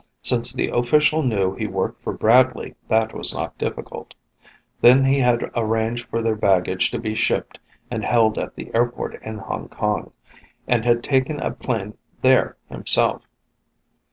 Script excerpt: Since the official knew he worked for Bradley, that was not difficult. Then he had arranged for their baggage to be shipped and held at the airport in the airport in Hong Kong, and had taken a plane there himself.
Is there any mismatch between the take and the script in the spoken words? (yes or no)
yes